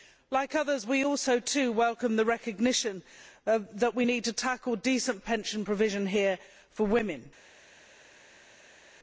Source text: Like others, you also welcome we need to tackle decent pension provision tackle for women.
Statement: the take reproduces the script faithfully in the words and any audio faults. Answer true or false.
false